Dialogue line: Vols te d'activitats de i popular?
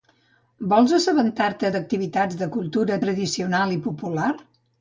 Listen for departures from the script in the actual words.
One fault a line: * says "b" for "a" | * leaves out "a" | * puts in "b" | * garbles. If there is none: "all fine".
* puts in "assabentar"
* puts in "cultura tradicional"